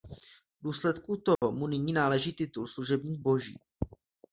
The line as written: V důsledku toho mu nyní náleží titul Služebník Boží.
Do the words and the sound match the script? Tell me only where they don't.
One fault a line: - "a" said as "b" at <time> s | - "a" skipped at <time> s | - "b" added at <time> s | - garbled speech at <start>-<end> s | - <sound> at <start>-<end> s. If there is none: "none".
- dropout at 1.3-1.4 s